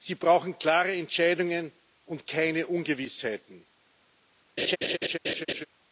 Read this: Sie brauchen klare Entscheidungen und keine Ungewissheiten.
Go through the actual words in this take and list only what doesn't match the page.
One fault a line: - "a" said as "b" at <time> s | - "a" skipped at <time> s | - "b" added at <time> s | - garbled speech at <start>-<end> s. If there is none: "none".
none